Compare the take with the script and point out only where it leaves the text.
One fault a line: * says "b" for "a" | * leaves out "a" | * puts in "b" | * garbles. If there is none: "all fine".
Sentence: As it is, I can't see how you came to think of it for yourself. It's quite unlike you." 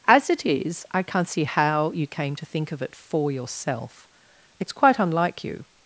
all fine